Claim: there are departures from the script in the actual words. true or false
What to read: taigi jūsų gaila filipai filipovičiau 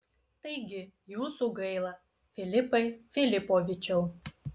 false